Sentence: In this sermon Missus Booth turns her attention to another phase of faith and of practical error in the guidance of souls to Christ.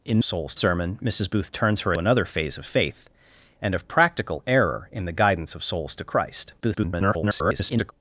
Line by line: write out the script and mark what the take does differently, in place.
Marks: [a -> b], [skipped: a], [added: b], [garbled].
In [this -> souls] sermon Missus Booth turns her [skipped: attention to] another phase of faith and of practical error in the guidance of souls to Christ. [garbled]